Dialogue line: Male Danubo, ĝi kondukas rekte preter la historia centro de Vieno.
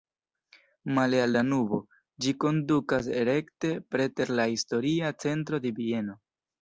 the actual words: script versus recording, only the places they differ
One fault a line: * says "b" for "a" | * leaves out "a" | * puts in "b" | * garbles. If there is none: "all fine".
* puts in "al"